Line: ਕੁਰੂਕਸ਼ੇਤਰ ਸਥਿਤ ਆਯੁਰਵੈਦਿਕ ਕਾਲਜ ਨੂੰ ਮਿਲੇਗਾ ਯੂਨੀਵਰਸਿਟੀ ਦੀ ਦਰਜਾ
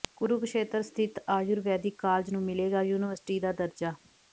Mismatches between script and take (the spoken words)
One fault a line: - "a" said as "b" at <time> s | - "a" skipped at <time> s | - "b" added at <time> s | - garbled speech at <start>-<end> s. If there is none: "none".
- "ਦੀ" said as "ਦਾ" at 3.4 s